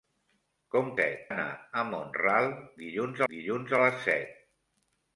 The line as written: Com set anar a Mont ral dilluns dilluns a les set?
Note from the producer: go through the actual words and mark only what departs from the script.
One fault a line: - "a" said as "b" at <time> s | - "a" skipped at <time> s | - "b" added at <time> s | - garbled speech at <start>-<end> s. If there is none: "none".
none